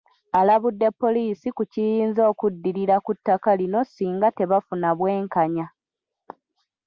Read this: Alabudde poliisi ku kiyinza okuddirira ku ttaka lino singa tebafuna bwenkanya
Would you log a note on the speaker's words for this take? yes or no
no